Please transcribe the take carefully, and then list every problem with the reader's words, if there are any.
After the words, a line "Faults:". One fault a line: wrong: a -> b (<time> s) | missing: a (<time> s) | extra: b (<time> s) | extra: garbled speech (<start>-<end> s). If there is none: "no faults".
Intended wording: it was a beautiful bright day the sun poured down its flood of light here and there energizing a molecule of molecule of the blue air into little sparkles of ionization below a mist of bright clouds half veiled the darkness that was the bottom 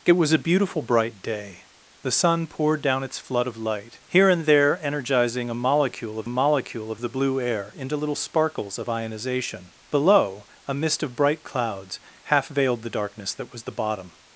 it was a beautiful bright day the sun poured down its flood of light here and there energizing a molecule of molecule of the blue air into little sparkles of ionization below a mist of bright clouds half veiled the darkness that was the bottom
Faults:
no faults